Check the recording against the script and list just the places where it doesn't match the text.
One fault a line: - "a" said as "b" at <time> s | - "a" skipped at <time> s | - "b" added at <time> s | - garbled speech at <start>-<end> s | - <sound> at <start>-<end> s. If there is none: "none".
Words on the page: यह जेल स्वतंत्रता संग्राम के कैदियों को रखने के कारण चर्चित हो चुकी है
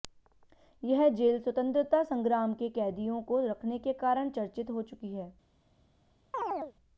- chirp at 6.3-6.7 s